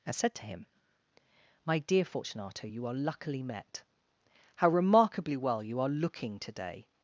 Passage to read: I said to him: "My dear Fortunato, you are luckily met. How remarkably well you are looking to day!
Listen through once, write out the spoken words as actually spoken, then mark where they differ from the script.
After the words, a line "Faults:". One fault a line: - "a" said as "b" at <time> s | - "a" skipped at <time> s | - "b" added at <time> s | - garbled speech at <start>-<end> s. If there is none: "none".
and said to him: "My dear Fortunato, you are luckily met. How remarkably well you are looking to day!
Faults:
- "I" said as "and" at 0.1 s